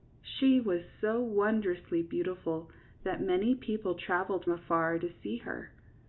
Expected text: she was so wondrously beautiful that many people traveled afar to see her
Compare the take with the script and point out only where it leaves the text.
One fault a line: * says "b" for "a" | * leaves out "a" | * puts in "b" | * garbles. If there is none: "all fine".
all fine